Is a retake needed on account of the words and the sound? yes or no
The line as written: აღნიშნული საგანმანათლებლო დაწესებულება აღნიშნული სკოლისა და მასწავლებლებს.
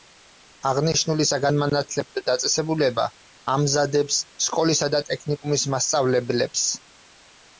yes